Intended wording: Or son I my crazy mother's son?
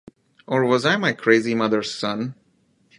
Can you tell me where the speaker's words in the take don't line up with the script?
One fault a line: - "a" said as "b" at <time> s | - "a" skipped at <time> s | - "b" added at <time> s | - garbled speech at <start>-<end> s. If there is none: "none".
- "son" said as "was" at 0.7 s